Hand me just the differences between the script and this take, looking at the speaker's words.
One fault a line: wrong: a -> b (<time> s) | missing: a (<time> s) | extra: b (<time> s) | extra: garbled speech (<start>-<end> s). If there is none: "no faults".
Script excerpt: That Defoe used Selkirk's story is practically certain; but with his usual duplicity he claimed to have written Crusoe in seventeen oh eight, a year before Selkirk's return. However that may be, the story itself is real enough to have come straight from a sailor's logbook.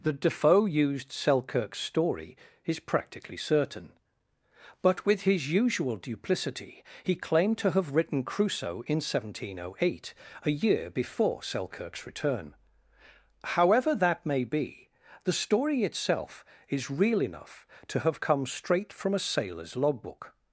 no faults